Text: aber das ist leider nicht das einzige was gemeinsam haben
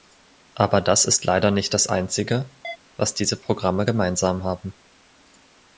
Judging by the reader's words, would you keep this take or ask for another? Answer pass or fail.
fail